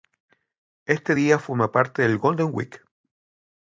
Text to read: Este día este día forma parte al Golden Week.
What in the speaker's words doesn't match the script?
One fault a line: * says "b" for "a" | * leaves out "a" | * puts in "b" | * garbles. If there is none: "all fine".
* leaves out "este día"
* says "del" for "al"